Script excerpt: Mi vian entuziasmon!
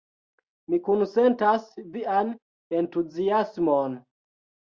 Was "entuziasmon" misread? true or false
false